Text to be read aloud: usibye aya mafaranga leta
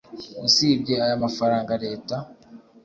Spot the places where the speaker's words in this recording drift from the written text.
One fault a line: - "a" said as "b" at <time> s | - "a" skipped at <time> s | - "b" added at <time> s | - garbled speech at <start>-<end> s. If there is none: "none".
none